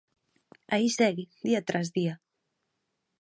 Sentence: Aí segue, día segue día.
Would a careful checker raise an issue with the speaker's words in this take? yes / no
yes